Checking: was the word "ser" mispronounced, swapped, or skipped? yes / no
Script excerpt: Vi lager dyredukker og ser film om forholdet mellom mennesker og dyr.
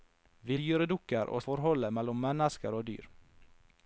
yes